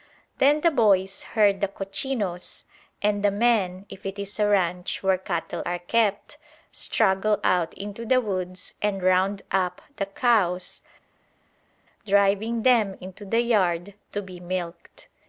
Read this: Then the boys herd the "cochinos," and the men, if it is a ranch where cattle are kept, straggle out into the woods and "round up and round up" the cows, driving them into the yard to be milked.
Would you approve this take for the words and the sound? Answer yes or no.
no